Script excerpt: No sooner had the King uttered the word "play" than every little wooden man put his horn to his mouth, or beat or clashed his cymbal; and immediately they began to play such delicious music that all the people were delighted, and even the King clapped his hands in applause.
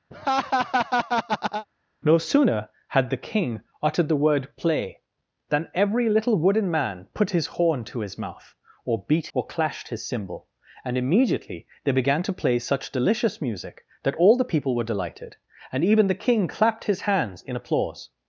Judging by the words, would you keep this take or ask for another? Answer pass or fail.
pass